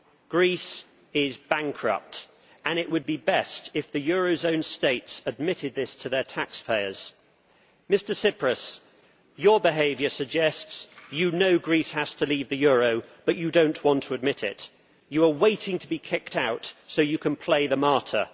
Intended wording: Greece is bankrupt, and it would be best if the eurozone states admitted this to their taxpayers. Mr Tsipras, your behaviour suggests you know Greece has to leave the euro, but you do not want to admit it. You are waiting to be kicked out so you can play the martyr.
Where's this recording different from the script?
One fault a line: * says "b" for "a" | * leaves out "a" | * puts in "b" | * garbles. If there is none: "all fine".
all fine